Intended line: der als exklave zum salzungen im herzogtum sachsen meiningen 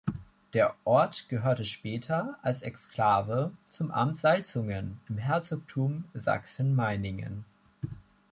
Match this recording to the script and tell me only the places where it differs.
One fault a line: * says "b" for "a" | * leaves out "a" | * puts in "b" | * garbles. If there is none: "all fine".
* puts in "ort gehörte später"
* puts in "amt"